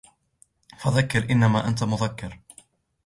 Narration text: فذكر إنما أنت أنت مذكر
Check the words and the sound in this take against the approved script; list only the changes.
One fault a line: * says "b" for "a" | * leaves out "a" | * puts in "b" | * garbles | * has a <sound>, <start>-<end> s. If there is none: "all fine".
* leaves out "أنت"